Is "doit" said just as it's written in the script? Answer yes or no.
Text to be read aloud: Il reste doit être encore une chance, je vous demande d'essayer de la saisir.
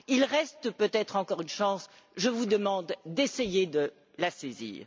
no